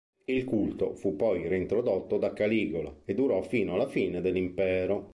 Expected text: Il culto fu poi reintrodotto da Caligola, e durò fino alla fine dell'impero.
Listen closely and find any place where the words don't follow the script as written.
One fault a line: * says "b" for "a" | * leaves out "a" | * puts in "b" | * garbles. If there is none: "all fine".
all fine